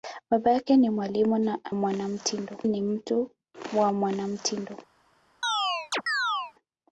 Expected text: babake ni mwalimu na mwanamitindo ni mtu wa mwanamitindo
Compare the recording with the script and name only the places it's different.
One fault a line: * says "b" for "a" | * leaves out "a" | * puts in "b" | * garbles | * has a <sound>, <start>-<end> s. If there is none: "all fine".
* has a chirp, 5.4-6.5 s